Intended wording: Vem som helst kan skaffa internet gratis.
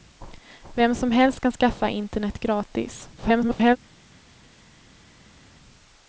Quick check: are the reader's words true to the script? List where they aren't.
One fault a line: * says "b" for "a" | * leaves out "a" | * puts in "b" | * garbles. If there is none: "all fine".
* garbles